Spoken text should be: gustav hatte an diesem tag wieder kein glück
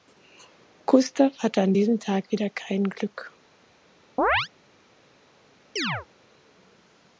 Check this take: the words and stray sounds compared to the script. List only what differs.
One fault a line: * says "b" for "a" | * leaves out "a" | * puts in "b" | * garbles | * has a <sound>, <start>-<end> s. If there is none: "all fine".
* has a chirp, 4.2-4.5 s
* has a chirp, 5.8-6.1 s